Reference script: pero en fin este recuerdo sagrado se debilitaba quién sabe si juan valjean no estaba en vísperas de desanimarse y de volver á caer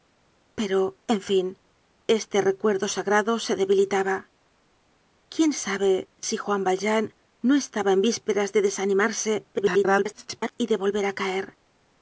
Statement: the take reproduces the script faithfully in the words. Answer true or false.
false